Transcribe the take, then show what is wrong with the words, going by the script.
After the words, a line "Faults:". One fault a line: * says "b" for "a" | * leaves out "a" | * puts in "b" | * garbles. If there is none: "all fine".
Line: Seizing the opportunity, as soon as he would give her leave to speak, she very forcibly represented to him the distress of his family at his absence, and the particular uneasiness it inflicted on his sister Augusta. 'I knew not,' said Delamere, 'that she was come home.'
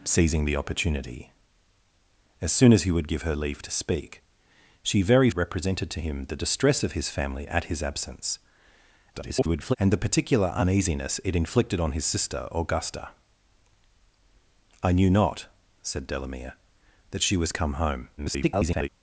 Seizing the opportunity, as soon as he would give her leave to speak, she very represented to him the distress of his family at his absence, [garbled] and the particular uneasiness it inflicted on his sister Augusta. 'I knew not,' said Delamere, 'that she was come home.' [garbled]
Faults:
* leaves out "forcibly"
* garbles
* garbles